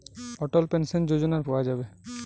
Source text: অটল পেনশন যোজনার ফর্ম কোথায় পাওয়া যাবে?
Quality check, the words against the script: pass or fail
fail